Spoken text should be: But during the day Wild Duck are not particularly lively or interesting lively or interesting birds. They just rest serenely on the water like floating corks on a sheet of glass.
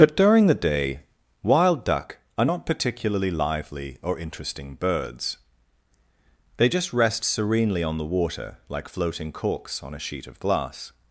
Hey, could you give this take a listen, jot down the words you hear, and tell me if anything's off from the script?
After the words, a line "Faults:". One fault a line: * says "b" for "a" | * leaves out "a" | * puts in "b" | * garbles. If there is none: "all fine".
But during the day Wild Duck are not particularly lively or interesting birds. They just rest serenely on the water like floating corks on a sheet of glass.
Faults:
* leaves out "lively or interesting"